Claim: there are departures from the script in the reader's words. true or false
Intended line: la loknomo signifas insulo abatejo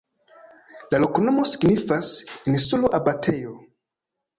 false